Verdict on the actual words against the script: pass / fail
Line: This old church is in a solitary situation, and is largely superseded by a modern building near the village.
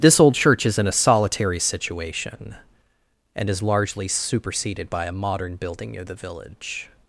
pass